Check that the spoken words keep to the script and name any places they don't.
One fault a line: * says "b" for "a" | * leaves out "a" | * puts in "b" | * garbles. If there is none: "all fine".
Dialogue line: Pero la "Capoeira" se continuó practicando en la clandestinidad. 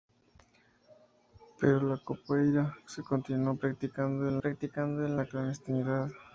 * puts in "practicando en"